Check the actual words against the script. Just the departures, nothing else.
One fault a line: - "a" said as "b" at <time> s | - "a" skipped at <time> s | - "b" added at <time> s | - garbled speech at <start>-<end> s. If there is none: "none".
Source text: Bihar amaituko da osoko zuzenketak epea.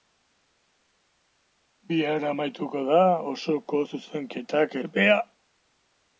none